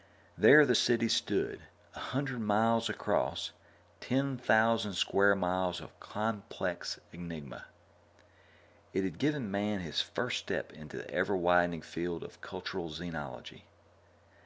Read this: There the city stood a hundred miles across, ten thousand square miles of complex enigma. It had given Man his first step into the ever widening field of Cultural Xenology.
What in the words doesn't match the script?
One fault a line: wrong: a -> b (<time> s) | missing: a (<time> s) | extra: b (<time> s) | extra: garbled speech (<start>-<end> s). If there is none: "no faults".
no faults